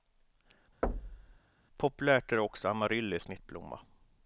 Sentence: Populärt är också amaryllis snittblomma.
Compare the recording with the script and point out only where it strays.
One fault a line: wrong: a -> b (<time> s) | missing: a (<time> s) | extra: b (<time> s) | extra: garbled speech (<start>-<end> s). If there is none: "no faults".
no faults